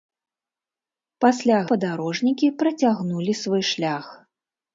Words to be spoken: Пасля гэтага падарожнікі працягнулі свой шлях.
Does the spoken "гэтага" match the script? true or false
false